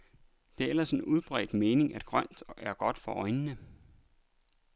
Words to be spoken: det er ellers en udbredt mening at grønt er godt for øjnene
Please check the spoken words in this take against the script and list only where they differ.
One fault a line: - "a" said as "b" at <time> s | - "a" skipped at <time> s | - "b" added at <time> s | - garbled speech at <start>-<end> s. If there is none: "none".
none